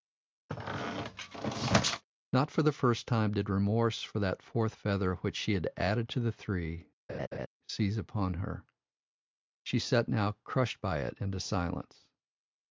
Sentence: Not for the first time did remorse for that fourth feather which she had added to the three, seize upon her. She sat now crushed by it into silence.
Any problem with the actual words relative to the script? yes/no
no